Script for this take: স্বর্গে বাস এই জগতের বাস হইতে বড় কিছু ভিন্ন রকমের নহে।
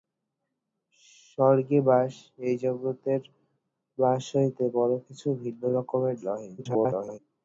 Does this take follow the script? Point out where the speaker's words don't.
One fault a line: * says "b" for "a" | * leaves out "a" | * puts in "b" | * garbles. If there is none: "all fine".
* garbles